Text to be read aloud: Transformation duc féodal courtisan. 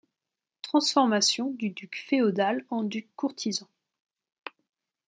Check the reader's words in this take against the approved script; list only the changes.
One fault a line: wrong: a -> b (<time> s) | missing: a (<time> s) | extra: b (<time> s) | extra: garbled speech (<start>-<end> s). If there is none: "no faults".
extra: du (1.5 s)
extra: en duc (2.7 s)